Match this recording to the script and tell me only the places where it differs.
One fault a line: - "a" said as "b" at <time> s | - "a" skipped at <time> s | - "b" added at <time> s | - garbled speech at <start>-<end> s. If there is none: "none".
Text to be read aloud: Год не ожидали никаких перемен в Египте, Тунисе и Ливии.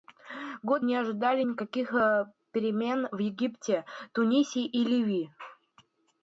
none